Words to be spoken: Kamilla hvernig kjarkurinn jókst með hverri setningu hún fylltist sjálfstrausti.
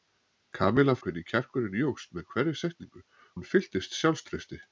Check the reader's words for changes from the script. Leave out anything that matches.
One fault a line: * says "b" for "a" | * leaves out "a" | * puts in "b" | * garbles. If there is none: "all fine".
all fine